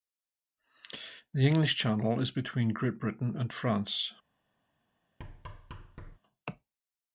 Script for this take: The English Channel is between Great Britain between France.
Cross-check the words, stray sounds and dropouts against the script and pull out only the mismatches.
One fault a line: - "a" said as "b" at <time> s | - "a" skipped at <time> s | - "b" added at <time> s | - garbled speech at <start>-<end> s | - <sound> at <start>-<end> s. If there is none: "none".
- "between" said as "and" at 3.4 s
- thud at 5.2-6.2 s